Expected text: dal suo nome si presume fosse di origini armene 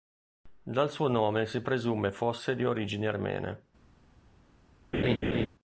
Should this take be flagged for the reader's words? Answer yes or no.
no